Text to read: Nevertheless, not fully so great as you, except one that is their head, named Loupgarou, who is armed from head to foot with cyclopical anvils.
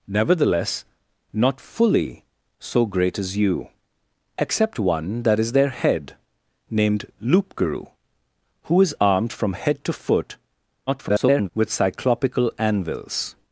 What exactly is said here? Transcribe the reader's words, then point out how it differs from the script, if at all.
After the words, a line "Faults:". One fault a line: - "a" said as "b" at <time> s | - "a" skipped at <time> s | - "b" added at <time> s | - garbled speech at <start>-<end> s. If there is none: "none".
Nevertheless, not fully so great as you, except one that is their head, named Loupgarou, who is armed from head to foot [garbled] with cyclopical anvils.
Faults:
- garbled speech at 10.9-11.5 s